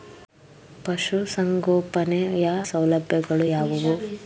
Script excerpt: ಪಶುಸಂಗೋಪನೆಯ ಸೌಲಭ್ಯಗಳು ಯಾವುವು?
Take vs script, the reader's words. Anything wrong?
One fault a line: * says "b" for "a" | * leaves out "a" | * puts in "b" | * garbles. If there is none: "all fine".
all fine